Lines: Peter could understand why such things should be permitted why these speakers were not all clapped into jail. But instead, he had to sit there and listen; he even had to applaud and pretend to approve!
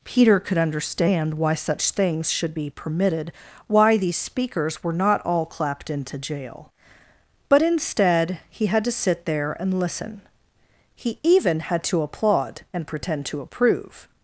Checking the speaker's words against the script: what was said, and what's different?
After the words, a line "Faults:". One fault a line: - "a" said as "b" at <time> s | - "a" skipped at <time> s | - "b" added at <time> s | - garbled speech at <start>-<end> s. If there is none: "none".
Peter could understand why such things should be permitted why these speakers were not all clapped into jail. But instead, he had to sit there and listen; he even had to applaud and pretend to approve!
Faults:
none